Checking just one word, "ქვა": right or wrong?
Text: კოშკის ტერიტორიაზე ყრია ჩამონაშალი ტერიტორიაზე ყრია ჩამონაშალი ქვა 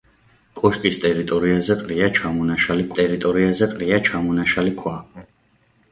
right